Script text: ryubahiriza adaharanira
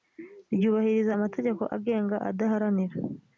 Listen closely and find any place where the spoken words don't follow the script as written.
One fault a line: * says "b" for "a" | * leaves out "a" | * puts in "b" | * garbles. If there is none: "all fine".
* puts in "amategeko agenga"